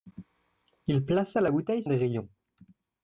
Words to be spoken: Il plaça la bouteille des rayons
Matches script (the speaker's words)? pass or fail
pass